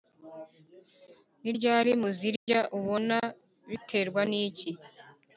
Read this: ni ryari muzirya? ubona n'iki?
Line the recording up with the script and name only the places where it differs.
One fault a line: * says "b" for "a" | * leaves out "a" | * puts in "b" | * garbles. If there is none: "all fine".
* puts in "biterwa"